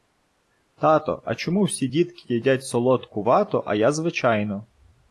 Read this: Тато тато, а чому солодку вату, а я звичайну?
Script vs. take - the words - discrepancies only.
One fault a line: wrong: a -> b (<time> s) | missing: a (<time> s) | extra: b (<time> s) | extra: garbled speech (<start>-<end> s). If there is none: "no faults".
missing: тато (1.2 s)
extra: всі дітки їдять (1.6 s)